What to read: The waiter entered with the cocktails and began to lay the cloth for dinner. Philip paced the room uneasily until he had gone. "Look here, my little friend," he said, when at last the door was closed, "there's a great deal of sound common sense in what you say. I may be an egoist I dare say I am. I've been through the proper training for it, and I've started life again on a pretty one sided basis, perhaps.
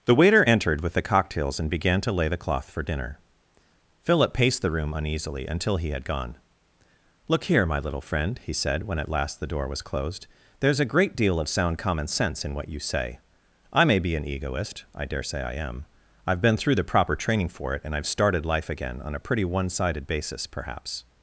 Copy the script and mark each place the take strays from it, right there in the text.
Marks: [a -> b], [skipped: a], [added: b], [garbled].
The waiter entered with the cocktails and began to lay the cloth for dinner. Philip paced the room uneasily until he had gone. "Look here, my little friend," he said, when at last the door was closed, "there's a great deal of sound common sense in what you say. I may be an egoist I dare say I am. I've been through the proper training for it, and I've started life again on a pretty one sided basis, perhaps.